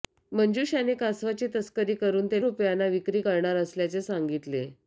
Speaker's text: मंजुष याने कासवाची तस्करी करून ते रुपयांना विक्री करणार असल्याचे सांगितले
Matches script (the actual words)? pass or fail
pass